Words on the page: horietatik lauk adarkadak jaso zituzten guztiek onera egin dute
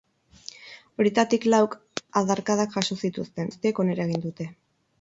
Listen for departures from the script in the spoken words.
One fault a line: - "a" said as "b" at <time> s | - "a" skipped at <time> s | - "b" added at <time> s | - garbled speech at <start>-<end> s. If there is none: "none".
none